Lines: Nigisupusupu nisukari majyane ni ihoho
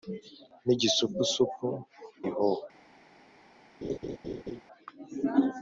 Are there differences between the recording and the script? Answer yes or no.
yes